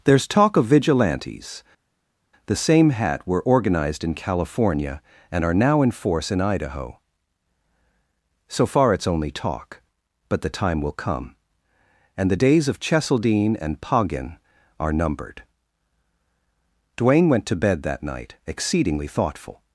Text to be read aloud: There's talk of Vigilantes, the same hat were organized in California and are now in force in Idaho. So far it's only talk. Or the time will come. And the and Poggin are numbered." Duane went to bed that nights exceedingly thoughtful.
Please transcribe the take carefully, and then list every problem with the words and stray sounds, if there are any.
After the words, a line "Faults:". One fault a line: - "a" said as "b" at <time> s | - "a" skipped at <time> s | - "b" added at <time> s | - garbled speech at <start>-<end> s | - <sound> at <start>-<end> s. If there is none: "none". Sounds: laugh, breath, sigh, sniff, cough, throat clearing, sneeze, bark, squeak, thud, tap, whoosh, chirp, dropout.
There's talk of Vigilantes, the same hat were organized in California and are now in force in Idaho. So far it's only talk. But the time will come. And the days of Cheseldine and Poggin are numbered." Duane went to bed that night exceedingly thoughtful.
Faults:
- "Or" said as "But" at 10.3 s
- "days of Cheseldine" added at 12.3 s
- "nights" said as "night" at 18.0 s